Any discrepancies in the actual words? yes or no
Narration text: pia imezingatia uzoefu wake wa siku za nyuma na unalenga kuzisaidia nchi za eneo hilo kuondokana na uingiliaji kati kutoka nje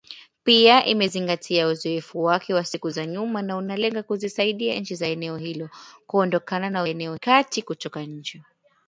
yes